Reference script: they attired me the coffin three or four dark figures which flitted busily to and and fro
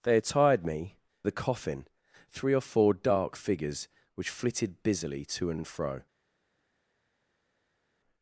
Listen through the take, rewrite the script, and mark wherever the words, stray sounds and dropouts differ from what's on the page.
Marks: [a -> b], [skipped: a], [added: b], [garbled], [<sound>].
they attired me the coffin three or four dark figures which flitted busily to and and fro